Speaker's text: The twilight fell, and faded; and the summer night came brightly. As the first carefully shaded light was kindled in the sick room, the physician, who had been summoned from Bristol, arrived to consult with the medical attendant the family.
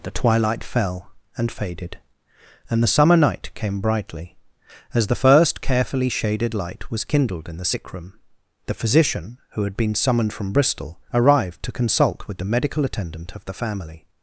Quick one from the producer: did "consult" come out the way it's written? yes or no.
yes